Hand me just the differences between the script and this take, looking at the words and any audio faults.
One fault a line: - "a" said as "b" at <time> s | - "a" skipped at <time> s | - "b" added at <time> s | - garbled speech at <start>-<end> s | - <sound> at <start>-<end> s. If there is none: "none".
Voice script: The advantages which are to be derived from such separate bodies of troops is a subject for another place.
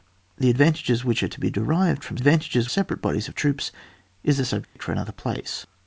- "such" said as "advantages" at 2.2 s
- dropout at 4.6-4.8 s